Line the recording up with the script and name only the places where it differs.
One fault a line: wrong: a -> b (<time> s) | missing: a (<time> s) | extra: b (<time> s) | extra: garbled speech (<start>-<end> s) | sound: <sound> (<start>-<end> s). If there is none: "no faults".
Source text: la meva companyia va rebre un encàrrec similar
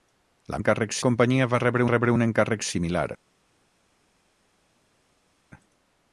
wrong: meva -> encàrrec (0.6 s)
extra: rebre (1.9 s)